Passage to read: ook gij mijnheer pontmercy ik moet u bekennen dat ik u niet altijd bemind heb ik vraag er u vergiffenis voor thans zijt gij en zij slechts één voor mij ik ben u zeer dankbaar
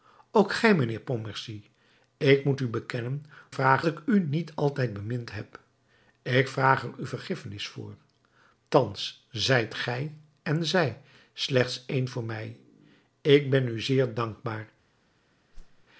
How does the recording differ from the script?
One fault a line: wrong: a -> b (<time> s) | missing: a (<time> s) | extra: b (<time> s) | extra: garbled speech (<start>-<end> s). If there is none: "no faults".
wrong: dat -> vraag (3.5 s)